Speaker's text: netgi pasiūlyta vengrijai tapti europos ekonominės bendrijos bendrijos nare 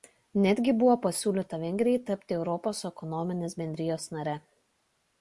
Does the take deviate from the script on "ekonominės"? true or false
false